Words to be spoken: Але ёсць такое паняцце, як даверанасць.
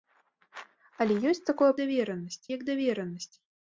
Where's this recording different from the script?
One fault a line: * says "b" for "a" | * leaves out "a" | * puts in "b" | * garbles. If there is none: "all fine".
* says "даверанасць" for "паняцце"